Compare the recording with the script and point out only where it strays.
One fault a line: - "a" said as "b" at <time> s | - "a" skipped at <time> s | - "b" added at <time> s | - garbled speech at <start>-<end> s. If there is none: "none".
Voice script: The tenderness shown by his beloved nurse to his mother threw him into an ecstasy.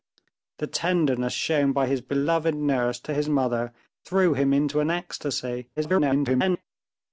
- garbled speech at 5.8-6.6 s